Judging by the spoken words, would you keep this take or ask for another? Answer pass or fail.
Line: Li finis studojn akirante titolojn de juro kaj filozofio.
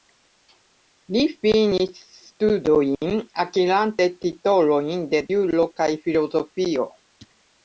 pass